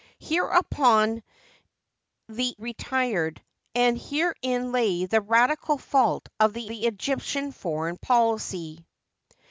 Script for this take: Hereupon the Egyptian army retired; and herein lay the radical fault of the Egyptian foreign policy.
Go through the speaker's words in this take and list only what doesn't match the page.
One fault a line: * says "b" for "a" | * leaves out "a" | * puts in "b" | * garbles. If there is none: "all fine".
* leaves out "Egyptian army"
* puts in "the"